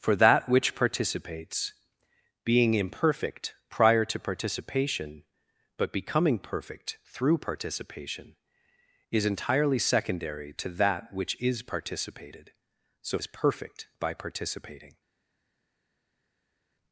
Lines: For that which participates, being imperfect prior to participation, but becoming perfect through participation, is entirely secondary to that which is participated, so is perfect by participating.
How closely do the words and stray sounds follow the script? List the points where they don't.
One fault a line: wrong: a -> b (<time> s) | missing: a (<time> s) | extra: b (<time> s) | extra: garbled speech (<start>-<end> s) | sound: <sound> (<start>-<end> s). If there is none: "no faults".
no faults